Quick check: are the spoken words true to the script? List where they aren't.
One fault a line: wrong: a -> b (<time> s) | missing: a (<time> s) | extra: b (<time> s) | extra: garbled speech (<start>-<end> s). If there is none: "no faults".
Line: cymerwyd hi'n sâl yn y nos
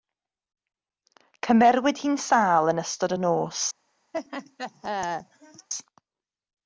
extra: ystod (2.8 s)